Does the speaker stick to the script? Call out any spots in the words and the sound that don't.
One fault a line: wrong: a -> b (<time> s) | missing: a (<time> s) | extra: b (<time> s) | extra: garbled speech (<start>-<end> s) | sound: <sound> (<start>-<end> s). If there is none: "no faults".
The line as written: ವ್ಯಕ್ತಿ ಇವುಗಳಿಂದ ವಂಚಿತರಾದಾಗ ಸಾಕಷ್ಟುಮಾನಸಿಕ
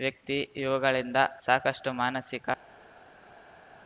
missing: ವಂಚಿತರಾದಾಗ (1.2 s)